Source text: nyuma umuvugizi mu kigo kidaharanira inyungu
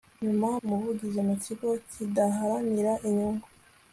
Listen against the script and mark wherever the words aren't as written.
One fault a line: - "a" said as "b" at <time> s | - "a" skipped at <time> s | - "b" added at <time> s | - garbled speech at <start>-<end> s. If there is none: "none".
none